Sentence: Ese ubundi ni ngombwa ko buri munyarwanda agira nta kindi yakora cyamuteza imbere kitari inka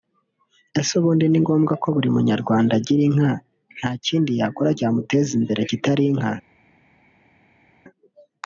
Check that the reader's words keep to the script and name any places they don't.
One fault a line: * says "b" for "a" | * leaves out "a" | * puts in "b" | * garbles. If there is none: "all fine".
* puts in "inka"